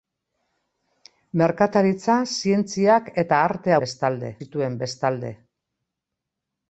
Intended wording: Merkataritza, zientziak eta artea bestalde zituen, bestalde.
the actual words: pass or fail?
pass